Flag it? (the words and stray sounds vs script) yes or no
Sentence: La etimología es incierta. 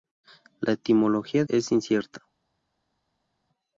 no